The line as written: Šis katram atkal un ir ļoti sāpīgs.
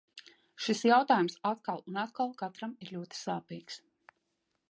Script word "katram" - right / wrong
wrong